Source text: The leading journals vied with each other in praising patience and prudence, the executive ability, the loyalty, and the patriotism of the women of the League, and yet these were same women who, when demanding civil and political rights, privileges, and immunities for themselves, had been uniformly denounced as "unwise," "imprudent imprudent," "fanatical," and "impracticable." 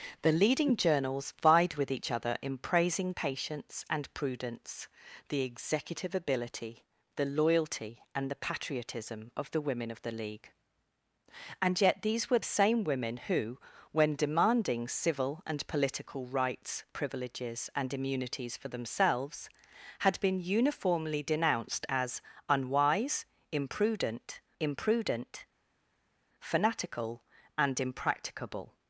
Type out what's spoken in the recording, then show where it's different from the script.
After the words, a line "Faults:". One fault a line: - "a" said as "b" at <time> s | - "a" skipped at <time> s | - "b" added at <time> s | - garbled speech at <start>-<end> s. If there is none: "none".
The leading journals vied with each other in praising patience and prudence, the executive ability, the loyalty, and the patriotism of the women of the League, and yet these were same women who, when demanding civil and political rights, privileges, and immunities for themselves, had been uniformly denounced as "unwise," "imprudent imprudent," "fanatical," and "impracticable."
Faults:
none